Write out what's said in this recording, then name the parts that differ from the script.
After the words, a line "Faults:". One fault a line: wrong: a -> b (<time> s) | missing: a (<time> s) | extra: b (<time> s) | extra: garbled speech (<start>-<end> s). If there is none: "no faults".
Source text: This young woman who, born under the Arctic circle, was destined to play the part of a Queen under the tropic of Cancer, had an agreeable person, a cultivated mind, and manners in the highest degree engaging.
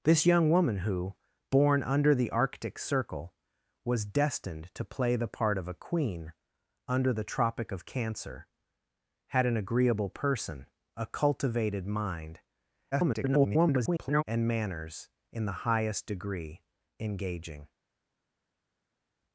This young woman who, born under the Arctic circle, was destined to play the part of a Queen under the tropic of Cancer, had an agreeable person, a cultivated mind, [garbled] and manners in the highest degree engaging.
Faults:
extra: garbled speech (12.9-14.2 s)